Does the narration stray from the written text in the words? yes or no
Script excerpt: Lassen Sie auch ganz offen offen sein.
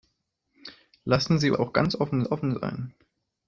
no